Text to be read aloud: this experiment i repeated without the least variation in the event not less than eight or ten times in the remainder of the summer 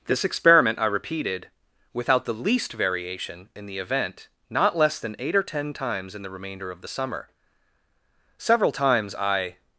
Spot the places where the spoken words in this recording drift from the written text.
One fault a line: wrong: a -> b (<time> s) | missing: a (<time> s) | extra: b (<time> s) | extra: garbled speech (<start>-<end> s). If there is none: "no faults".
extra: several times i (8.4 s)